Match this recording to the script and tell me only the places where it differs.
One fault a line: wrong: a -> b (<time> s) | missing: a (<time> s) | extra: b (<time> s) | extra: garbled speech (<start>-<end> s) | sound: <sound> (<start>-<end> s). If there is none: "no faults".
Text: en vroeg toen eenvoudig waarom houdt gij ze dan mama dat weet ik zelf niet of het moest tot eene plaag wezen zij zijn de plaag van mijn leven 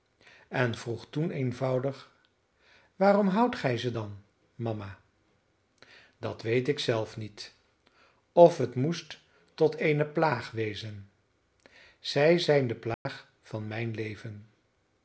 sound: dropout (12.9-13.1 s)